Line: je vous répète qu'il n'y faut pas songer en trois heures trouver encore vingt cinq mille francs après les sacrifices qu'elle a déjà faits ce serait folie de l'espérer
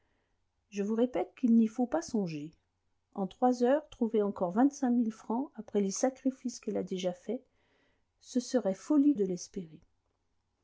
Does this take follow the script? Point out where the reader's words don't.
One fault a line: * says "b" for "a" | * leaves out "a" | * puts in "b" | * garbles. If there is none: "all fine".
all fine